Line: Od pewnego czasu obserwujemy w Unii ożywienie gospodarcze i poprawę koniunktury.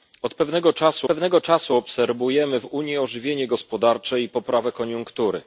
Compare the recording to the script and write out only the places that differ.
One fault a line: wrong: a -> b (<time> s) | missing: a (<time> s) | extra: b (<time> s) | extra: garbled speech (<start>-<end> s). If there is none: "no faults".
extra: pewnego czasu (1.0 s)